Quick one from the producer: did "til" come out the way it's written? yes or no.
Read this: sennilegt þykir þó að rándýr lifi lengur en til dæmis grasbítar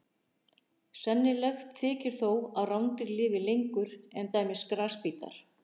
no